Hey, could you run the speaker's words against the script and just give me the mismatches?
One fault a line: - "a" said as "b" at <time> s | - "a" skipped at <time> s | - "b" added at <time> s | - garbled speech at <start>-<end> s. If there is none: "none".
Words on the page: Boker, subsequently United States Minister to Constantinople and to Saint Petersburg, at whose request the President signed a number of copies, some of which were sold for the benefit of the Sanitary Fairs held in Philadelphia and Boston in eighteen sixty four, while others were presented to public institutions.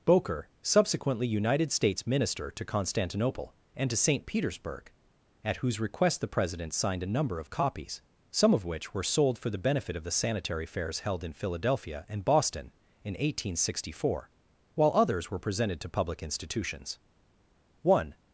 - "One" added at 17.8 s